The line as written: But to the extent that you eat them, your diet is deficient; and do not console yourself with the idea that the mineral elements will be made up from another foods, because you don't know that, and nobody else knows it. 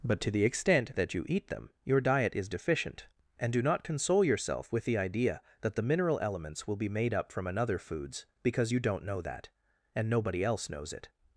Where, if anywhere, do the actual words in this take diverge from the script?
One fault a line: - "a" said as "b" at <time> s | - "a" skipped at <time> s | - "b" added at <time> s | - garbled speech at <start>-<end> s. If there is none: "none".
none